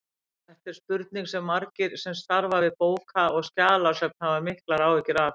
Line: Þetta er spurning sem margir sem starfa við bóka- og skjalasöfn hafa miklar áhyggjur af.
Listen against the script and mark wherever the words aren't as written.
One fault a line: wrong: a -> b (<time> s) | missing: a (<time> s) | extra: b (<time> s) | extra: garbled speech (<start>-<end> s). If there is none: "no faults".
no faults